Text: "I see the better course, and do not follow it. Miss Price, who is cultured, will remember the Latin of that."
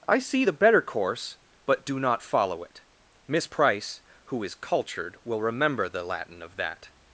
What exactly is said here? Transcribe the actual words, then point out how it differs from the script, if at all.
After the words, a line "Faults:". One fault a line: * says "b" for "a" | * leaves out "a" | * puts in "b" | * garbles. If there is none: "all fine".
"I see the better course, but do not follow it. Miss Price, who is cultured, will remember the Latin of that."
Faults:
* says "but" for "and"